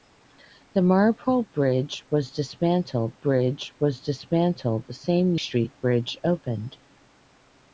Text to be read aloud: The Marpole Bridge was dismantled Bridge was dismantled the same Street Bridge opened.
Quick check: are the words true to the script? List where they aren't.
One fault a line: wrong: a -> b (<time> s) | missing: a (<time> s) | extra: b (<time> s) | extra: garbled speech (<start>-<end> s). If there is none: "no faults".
no faults